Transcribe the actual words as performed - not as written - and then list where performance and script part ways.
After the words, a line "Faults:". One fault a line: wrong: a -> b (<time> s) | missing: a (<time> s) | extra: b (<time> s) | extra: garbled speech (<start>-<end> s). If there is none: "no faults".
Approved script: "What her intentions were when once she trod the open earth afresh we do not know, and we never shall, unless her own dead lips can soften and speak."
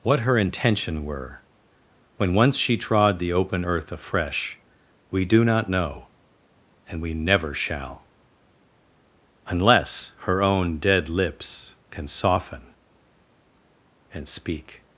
"What her intention were when once she trod the open earth afresh we do not know, and we never shall, unless her own dead lips can soften and speak."
Faults:
wrong: intentions -> intention (0.4 s)